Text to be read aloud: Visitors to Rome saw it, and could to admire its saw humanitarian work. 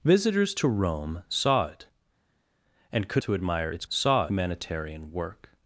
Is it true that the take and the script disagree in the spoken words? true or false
false